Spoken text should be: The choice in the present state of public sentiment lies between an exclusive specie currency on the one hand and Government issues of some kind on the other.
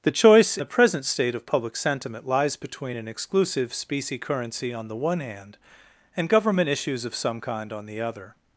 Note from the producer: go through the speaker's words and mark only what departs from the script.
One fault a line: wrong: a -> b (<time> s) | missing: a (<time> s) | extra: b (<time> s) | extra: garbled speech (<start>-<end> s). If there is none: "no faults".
missing: in (0.6 s)